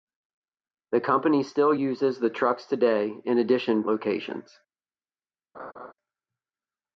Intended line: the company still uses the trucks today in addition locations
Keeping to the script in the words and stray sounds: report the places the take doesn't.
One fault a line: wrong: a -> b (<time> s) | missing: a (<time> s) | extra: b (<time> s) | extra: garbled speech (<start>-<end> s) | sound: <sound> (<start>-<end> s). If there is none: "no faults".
sound: laugh (5.5-5.9 s)